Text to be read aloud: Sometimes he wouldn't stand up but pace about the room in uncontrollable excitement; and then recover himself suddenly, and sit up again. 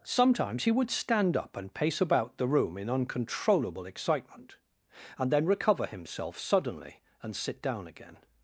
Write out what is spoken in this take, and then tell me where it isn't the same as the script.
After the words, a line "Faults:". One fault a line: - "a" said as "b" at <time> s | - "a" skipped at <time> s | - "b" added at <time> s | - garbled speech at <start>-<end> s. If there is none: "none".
Sometimes he would stand up and pace about the room in uncontrollable excitement; and then recover himself suddenly, and sit down again.
Faults:
- "wouldn't" said as "would" at 0.7 s
- "but" said as "and" at 1.6 s
- "up" said as "down" at 7.6 s